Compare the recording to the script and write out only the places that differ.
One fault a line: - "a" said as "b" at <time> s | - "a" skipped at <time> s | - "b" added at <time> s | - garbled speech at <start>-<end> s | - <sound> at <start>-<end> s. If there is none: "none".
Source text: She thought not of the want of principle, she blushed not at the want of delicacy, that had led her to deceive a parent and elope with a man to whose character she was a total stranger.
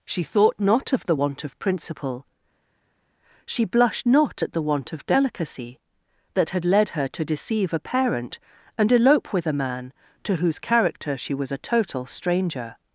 none